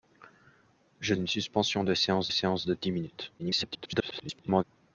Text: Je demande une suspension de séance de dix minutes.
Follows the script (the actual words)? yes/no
no